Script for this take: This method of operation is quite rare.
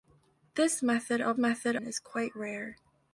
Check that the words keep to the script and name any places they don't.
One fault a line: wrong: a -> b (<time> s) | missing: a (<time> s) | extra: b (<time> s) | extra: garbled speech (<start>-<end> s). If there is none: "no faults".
wrong: operation -> method (1.4 s)